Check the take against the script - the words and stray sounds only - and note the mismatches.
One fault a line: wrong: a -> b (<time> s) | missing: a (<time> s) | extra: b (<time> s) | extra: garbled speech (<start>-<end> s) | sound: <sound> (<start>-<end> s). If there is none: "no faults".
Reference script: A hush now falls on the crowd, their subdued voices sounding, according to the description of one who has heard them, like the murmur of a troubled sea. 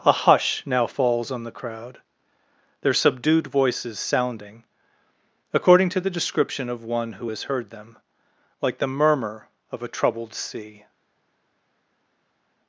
no faults